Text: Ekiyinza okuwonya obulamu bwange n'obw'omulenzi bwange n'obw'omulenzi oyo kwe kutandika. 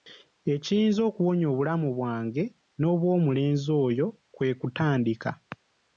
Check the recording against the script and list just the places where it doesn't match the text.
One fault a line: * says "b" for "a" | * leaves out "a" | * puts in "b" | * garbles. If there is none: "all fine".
* leaves out "bwange n'obw'omulenzi"